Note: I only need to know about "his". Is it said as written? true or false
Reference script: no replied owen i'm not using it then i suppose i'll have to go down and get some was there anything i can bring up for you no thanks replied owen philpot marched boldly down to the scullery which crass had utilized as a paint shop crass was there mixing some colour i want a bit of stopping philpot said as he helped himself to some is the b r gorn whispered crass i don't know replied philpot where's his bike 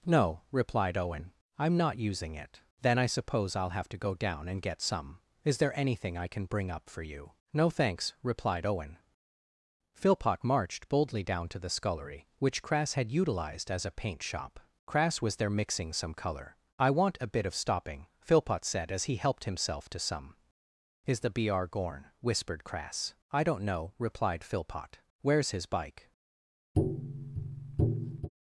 true